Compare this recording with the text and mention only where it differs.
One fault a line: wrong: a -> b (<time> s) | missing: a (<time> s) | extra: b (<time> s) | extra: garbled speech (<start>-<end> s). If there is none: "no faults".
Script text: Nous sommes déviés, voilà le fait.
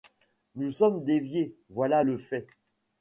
no faults